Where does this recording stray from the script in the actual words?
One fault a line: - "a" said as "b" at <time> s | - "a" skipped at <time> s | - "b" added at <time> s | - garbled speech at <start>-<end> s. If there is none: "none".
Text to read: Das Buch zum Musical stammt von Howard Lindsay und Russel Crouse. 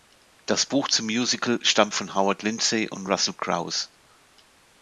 none